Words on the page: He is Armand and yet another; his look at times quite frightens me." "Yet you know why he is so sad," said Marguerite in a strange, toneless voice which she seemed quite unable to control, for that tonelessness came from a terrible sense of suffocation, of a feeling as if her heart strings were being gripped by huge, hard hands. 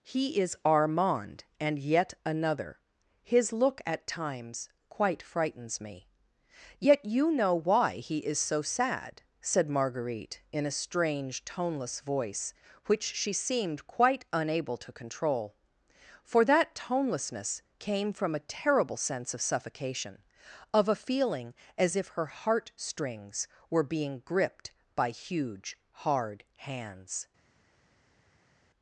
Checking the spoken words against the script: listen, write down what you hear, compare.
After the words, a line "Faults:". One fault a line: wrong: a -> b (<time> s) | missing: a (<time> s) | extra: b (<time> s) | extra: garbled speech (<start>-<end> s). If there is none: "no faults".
He is Armand and yet another; his look at times quite frightens me." "Yet you know why he is so sad," said Marguerite in a strange, toneless voice which she seemed quite unable to control, for that tonelessness came from a terrible sense of suffocation, of a feeling as if her heart strings were being gripped by huge, hard hands.
Faults:
no faults